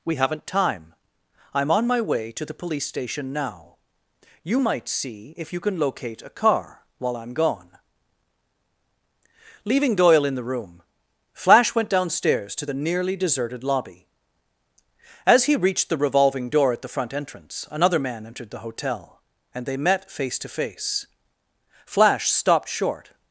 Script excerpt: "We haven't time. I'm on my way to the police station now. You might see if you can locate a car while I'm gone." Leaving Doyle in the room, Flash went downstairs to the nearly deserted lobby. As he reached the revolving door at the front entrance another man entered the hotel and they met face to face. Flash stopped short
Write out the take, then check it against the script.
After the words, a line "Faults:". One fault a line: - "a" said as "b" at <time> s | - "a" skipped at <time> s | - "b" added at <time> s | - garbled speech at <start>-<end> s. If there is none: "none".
"We haven't time. I'm on my way to the police station now. You might see if you can locate a car while I'm gone." Leaving Doyle in the room, Flash went downstairs to the nearly deserted lobby. As he reached the revolving door at the front entrance another man entered the hotel and they met face to face. Flash stopped short
Faults:
none